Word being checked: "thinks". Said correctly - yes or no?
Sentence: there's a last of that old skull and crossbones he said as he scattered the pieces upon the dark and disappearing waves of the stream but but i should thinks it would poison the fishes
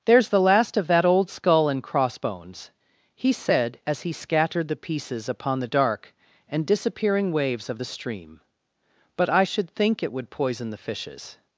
no